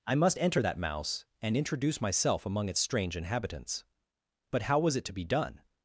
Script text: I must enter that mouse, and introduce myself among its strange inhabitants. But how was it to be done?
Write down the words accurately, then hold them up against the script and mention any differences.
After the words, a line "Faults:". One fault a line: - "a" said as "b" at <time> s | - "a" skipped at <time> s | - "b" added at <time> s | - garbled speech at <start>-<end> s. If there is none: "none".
I must enter that mouse, and introduce myself among its strange inhabitants. But how was it to be done?
Faults:
none